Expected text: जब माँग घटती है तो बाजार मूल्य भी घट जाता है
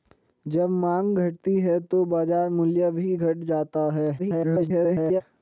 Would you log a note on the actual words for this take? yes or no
yes